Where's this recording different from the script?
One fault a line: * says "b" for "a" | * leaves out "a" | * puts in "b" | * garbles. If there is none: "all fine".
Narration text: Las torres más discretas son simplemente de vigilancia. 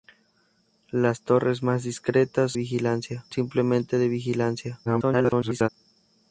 * says "vigilancia" for "son"
* garbles